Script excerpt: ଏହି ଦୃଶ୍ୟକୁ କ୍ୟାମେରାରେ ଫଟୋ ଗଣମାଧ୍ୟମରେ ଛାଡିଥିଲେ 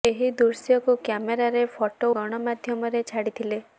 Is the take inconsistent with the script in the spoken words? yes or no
no